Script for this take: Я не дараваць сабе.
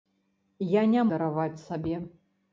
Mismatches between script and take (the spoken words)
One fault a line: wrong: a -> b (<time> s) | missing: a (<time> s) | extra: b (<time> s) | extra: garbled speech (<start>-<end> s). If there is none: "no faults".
no faults